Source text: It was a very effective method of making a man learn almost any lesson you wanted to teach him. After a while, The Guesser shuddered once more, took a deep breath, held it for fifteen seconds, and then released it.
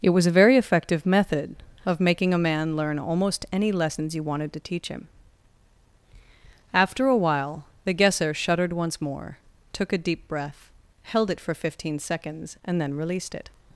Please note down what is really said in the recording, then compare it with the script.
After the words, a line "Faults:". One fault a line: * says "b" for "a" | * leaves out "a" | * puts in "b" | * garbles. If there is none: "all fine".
It was a very effective method of making a man learn almost any lessons you wanted to teach him. After a while, The Guesser shuddered once more, took a deep breath, held it for fifteen seconds, and then released it.
Faults:
* says "lessons" for "lesson"